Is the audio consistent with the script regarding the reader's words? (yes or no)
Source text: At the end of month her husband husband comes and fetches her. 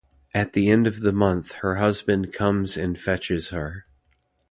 no